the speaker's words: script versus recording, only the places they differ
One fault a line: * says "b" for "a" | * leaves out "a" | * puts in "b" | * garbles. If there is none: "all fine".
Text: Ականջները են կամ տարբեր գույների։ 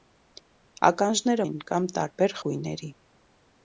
all fine